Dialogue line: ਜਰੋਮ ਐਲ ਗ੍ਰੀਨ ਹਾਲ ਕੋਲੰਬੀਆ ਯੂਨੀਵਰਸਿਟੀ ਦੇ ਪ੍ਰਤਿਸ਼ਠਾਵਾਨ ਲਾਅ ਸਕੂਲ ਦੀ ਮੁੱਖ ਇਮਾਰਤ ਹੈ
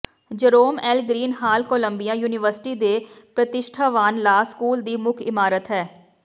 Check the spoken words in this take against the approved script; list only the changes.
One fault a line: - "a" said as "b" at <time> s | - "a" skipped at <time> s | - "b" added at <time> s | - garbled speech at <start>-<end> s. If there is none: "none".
none